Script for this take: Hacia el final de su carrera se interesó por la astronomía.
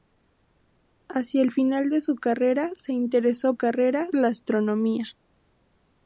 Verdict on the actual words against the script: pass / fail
fail